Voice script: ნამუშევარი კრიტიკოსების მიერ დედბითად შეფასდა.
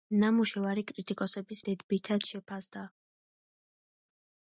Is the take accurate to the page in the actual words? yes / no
no